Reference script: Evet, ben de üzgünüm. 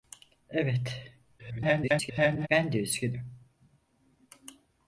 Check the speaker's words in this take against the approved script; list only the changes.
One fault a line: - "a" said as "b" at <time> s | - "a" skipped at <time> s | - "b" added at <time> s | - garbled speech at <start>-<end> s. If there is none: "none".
- garbled speech at 1.4-2.5 s